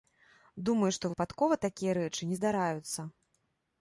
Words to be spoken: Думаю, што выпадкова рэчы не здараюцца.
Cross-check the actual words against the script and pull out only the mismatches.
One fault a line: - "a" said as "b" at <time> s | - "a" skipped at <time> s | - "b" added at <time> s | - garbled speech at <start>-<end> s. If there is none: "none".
- "такія" added at 1.7 s